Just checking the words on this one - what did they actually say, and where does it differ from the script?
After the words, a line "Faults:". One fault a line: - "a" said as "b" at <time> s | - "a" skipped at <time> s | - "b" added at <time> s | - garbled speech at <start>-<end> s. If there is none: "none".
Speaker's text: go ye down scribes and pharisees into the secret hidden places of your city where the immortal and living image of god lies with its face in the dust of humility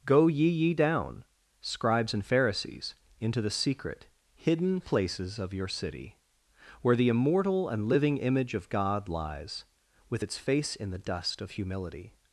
go ye ye down scribes and pharisees into the secret hidden places of your city where the immortal and living image of god lies with its face in the dust of humility
Faults:
- "ye" added at 0.5 s